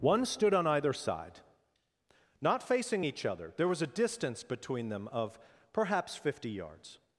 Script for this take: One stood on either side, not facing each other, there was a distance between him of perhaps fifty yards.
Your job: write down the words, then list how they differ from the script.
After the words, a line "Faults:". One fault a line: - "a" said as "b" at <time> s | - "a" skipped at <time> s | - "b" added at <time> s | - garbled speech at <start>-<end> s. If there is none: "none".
One stood on either side, not facing each other, there was a distance between them of perhaps fifty yards.
Faults:
- "him" said as "them" at 4.9 s